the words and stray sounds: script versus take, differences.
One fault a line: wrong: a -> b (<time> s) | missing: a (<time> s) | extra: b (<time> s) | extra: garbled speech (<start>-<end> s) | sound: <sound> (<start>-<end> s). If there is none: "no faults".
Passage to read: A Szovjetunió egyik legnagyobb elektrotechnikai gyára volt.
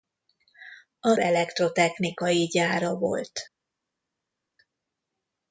missing: Szovjetunió egyik legnagyobb (1.2 s)